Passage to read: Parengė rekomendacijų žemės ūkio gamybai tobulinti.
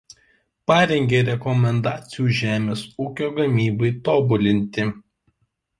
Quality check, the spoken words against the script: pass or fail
pass